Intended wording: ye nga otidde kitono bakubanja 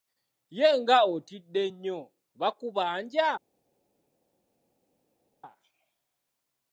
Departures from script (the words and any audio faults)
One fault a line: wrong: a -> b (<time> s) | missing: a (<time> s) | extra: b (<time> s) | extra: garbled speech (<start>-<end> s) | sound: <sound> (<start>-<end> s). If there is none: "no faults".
wrong: kitono -> nnyo (1.7 s)